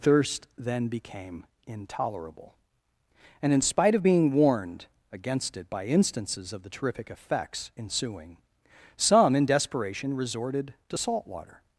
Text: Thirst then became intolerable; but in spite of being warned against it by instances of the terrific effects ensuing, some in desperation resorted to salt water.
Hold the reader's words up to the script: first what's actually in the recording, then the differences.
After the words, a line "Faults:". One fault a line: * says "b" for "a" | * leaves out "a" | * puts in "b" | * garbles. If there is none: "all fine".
Thirst then became intolerable; and in spite of being warned against it by instances of the terrific effects ensuing, some in desperation resorted to salt water.
Faults:
* says "and" for "but"